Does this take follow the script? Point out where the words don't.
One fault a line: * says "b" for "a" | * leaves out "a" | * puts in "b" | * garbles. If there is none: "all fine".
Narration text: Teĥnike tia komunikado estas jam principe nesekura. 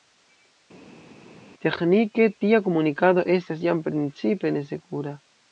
all fine